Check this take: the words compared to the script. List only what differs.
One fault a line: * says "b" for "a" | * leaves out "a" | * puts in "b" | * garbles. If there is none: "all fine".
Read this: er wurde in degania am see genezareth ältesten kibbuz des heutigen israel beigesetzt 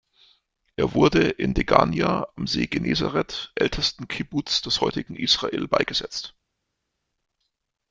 all fine